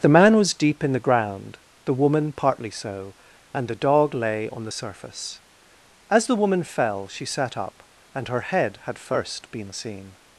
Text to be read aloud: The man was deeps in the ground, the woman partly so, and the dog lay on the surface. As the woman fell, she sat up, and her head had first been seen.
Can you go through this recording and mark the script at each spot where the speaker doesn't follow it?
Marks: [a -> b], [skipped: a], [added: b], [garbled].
The man was [deeps -> deep] in the ground, the woman partly so, and the dog lay on the surface. As the woman fell, she sat up, and her head had first been seen.